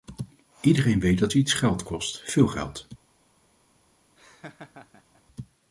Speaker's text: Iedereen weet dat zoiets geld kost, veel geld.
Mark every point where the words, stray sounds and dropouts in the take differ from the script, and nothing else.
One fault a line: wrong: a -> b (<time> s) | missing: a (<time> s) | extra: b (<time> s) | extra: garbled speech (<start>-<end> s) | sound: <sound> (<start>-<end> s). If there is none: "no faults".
sound: laugh (4.2-5.2 s)